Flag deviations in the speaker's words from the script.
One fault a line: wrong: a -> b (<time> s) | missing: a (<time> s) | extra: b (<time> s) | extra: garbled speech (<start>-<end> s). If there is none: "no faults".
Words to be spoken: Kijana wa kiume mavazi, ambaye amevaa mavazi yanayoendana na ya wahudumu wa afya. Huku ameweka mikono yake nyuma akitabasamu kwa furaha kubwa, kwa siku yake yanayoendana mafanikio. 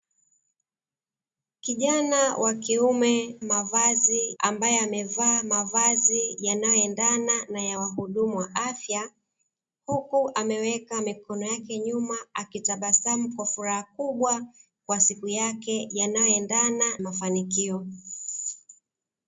no faults